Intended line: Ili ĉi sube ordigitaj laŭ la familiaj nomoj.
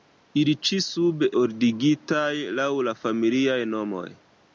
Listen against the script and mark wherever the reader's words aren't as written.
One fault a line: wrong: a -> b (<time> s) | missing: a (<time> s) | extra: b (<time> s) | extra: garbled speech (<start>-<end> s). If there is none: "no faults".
no faults